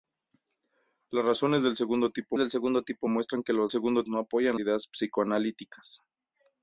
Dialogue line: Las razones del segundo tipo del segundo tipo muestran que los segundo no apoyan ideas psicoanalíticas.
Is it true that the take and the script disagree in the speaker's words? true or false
false